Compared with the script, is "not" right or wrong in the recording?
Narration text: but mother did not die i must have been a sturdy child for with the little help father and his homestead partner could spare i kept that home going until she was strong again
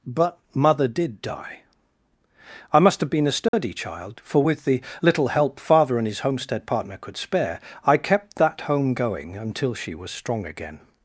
wrong